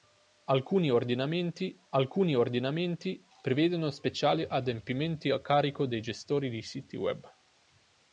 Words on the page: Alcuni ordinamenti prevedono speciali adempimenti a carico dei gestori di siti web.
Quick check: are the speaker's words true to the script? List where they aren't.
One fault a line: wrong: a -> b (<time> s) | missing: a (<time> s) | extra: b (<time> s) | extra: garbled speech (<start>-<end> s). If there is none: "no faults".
extra: alcuni ordinamenti (1.9 s)